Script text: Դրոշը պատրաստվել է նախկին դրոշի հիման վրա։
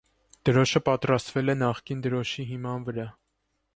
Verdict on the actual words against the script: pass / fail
pass